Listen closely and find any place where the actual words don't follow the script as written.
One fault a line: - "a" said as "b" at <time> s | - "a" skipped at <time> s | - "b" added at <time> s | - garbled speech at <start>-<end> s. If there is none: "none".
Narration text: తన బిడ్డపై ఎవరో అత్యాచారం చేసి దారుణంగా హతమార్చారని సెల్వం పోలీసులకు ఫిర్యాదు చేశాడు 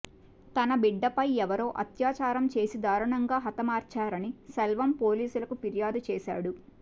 none